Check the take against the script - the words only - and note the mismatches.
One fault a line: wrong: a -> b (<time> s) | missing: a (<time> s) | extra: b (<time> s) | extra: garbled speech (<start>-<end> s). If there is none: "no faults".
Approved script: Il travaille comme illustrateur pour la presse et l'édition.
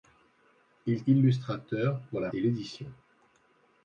missing: travaille comme (1.0 s)
missing: presse (2.3 s)